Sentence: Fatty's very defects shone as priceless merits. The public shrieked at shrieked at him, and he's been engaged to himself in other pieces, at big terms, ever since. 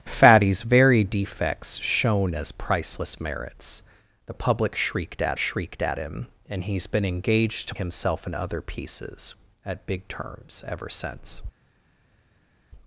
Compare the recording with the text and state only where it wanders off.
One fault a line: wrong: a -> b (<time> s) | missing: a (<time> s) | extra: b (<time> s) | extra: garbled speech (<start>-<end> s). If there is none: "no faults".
no faults